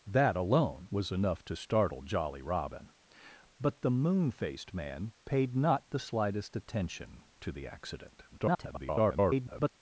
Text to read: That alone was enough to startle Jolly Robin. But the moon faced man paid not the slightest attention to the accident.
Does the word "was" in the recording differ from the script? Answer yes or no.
no